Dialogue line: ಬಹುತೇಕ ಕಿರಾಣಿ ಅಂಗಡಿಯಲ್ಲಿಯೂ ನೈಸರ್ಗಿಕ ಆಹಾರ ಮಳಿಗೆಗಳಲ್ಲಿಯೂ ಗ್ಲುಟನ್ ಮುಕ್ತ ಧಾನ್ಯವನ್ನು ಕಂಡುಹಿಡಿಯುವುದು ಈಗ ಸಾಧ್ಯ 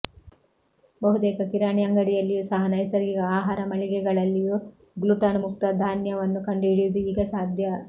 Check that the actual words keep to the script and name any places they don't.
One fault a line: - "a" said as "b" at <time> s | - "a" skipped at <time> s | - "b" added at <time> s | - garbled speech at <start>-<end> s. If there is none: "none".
- "ಸಹ" added at 2.5 s